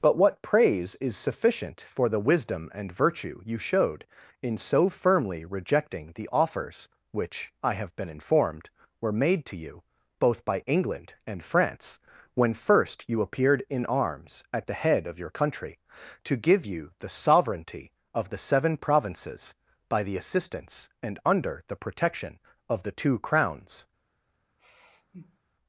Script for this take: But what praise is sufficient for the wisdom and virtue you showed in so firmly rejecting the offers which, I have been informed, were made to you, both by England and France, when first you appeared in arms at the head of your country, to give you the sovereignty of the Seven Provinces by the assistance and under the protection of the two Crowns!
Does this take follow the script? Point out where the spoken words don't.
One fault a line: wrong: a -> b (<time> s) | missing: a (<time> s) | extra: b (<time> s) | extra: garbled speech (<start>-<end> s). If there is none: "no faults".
no faults